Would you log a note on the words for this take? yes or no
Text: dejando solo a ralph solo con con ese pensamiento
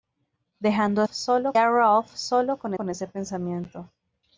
no